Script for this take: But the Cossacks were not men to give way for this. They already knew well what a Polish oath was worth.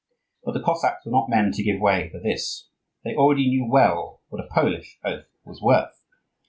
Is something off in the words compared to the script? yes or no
no